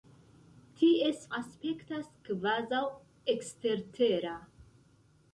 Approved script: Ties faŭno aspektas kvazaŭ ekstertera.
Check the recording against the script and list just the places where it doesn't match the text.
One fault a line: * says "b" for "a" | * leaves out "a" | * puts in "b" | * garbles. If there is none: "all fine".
* leaves out "faŭno"